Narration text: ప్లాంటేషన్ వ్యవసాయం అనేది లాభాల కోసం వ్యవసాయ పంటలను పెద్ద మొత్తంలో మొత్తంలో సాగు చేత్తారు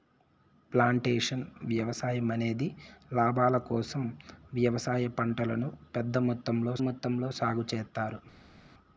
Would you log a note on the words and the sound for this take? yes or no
no